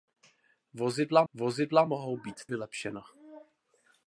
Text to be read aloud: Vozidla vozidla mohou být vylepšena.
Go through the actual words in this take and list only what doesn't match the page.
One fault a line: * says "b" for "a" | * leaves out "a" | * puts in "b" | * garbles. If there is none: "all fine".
all fine